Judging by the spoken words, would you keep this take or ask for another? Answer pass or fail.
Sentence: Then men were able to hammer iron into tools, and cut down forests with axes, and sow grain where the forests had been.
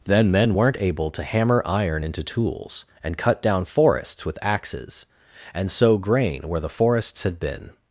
fail